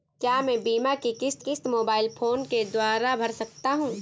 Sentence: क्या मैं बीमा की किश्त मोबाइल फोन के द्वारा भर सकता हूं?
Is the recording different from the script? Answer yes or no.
yes